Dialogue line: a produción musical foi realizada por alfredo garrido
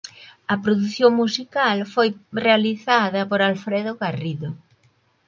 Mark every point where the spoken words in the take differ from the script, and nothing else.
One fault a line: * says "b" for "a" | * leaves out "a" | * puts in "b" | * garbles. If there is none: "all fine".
all fine